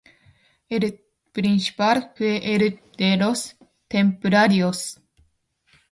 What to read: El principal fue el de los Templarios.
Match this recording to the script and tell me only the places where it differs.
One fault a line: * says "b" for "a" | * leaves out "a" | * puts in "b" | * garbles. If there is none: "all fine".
all fine